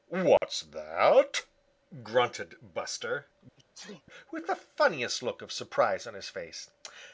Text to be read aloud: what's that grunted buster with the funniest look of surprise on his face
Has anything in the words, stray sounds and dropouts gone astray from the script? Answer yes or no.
yes